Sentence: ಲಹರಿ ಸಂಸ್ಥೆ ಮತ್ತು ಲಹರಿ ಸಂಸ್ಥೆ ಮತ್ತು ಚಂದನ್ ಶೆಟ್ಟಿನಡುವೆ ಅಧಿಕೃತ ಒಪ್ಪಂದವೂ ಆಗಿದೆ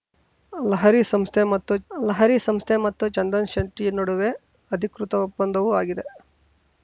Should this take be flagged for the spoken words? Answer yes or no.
no